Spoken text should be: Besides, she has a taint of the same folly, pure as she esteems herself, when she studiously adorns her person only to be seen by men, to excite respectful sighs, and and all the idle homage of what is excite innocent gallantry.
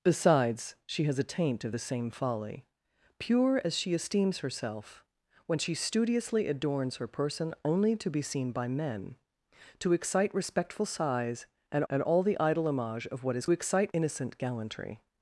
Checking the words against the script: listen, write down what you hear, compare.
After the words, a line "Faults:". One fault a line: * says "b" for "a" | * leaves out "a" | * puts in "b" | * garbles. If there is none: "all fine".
Besides, she has a taint of the same folly, pure as she esteems herself, when she studiously adorns her person only to be seen by men, to excite respectful sighs, and and all the idle homage of what is excite innocent gallantry.
Faults:
all fine